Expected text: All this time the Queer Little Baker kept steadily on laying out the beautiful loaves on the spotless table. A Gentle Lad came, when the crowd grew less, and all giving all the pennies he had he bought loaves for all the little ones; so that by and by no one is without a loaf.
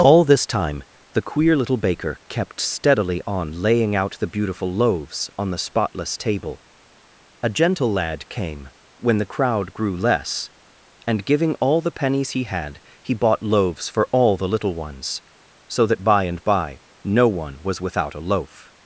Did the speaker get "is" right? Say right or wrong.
wrong